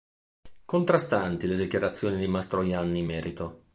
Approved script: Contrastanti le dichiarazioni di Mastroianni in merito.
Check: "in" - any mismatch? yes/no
no